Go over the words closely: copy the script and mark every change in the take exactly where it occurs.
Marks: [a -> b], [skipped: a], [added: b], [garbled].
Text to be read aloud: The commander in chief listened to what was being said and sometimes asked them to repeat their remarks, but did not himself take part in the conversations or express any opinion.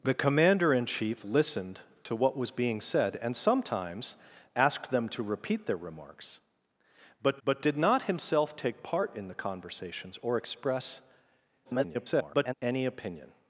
The commander in chief listened to what was being said and sometimes asked them to repeat their remarks, but [added: but] did not himself take part in the conversations or express [garbled] any opinion.